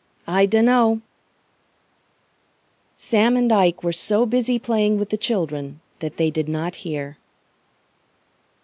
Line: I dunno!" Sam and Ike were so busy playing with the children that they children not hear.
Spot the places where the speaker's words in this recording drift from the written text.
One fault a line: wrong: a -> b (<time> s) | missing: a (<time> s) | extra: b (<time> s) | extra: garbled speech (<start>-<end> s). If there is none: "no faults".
wrong: children -> did (6.3 s)